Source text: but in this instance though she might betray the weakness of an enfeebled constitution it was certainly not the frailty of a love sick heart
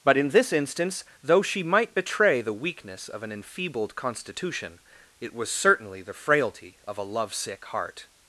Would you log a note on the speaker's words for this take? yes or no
yes